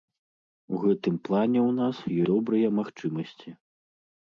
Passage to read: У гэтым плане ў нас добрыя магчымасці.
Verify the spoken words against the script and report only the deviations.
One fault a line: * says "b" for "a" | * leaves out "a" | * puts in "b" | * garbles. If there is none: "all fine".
all fine